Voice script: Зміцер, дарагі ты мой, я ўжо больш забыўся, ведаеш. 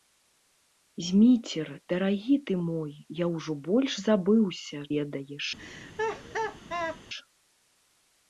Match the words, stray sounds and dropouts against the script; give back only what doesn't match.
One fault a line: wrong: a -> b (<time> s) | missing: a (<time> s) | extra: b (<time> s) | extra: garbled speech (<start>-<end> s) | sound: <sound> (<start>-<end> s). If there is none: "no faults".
sound: laugh (5.6-7.0 s)